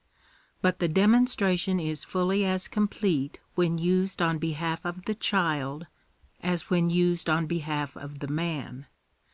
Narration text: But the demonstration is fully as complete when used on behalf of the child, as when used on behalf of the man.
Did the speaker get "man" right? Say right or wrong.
right